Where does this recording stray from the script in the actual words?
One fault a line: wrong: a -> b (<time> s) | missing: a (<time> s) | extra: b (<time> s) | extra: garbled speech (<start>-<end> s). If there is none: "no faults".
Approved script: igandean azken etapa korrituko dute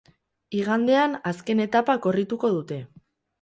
no faults